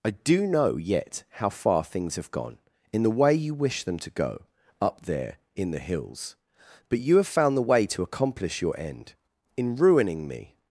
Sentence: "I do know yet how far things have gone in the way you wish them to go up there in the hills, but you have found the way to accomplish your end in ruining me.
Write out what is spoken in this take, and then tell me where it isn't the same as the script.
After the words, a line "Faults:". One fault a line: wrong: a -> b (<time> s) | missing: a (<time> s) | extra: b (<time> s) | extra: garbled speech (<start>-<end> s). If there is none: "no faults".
"I do know yet how far things have gone in the way you wish them to go up there in the hills, but you have found the way to accomplish your end in ruining me.
Faults:
no faults